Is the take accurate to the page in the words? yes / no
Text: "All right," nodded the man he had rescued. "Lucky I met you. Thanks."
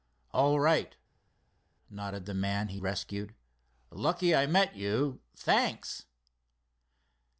no